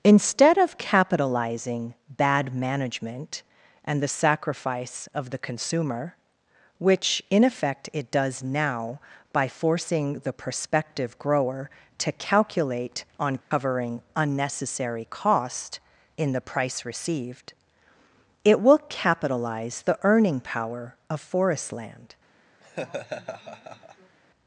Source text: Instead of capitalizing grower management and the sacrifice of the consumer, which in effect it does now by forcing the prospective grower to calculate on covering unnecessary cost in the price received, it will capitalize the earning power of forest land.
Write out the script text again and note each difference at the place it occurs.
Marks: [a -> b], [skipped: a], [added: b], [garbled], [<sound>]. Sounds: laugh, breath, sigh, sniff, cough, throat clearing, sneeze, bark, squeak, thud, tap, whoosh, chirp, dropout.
Instead of capitalizing [grower -> bad] management and the sacrifice of the consumer, which in effect it does now by forcing the prospective grower to calculate on covering [dropout] unnecessary cost in the price received, it will capitalize the earning power of forest land. [laugh]